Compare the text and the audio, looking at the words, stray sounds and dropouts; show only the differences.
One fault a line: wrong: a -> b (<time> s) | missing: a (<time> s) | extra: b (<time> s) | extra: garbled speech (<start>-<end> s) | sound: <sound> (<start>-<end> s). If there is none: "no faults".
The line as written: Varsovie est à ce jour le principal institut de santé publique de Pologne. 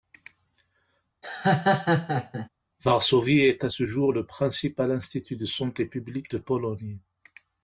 sound: laugh (1.2-2.5 s)